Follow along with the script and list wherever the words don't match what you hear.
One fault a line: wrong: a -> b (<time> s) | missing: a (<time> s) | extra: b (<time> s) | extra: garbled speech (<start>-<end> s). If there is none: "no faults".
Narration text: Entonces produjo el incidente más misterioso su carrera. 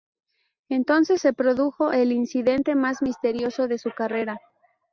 extra: se (1.2 s)
extra: de (3.7 s)